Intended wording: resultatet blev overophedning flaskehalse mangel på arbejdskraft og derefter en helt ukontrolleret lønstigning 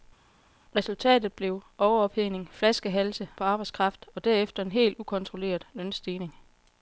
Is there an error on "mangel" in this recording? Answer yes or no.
yes